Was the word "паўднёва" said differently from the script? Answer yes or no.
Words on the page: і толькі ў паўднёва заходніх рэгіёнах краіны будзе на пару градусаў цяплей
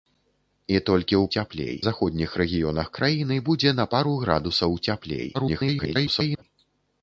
yes